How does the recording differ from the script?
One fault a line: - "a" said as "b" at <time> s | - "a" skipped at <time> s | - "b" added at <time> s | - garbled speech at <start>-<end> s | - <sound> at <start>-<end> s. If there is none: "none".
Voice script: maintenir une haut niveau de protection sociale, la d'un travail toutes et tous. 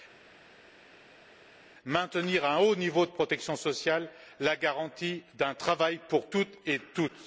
- "une" said as "un" at 2.4 s
- "garantie" added at 4.6 s
- "pour" added at 6.1 s